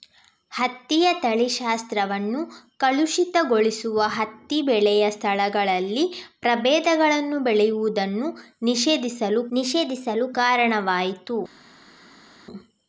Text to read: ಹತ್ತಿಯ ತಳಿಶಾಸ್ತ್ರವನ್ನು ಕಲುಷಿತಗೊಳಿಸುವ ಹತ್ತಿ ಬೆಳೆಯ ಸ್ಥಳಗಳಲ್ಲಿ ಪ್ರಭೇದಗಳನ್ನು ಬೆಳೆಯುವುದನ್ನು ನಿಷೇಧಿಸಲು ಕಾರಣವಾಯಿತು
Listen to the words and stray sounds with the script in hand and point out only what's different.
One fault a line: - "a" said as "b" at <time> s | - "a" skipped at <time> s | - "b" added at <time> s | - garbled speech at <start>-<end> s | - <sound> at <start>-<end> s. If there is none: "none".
- "ನಿಷೇಧಿಸಲು" added at 9.5 s